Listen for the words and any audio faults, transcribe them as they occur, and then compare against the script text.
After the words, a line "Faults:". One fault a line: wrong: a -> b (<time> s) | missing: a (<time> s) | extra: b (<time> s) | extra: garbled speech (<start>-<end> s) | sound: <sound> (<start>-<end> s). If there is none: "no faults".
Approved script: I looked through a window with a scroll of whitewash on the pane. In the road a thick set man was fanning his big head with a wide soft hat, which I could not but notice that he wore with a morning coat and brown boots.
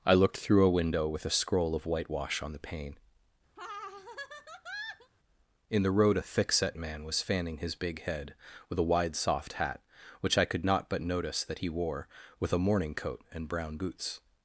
I looked through a window with a scroll of whitewash on the pane. In the road a thick set man was fanning his big head with a wide soft hat, which I could not but notice that he wore with a morning coat and brown boots.
Faults:
sound: laugh (3.6-5.1 s)